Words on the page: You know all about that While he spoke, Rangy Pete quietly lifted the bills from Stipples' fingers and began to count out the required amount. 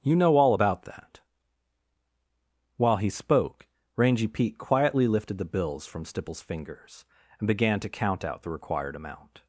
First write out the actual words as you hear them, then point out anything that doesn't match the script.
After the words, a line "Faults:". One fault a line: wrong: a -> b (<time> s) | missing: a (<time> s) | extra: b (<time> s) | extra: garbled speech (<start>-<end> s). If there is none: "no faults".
You know all about that While he spoke, Rangy Pete quietly lifted the bills from Stipples' fingers and began to count out the required amount.
Faults:
no faults